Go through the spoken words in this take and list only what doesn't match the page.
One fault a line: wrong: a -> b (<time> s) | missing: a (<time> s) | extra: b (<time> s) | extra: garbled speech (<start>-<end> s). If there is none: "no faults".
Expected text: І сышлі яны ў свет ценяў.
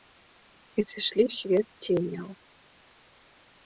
missing: яны (1.2 s)